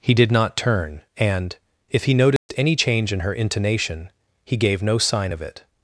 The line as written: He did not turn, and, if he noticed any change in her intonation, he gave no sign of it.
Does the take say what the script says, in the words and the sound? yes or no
no